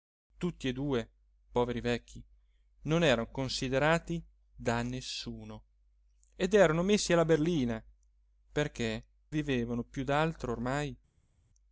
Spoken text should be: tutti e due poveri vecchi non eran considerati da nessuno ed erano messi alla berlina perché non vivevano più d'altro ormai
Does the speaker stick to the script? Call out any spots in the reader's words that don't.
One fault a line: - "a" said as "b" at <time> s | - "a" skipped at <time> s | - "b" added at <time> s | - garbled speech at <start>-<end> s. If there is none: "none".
- "non" skipped at 9.0 s